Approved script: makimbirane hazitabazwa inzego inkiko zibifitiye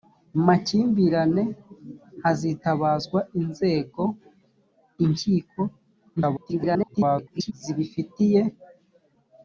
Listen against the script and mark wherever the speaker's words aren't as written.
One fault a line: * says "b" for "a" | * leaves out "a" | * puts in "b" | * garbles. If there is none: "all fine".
* garbles